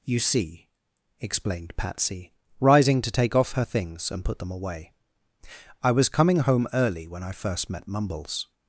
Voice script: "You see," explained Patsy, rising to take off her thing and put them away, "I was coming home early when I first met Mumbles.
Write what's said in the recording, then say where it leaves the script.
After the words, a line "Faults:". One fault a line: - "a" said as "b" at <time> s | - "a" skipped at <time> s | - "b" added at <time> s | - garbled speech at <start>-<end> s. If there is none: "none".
"You see," explained Patsy, rising to take off her things and put them away, "I was coming home early when I first met Mumbles.
Faults:
- "thing" said as "things" at 3.6 s